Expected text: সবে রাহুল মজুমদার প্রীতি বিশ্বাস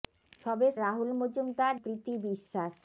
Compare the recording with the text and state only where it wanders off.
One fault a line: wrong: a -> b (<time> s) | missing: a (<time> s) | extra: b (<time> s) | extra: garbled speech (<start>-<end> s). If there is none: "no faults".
no faults